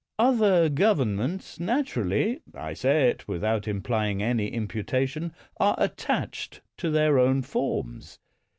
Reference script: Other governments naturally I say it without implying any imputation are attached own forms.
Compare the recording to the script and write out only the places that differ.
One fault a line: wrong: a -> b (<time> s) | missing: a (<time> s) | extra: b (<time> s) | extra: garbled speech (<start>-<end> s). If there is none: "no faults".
extra: to their (6.8 s)